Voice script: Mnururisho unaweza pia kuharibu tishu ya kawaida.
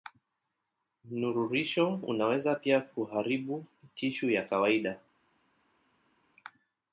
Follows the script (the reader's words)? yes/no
yes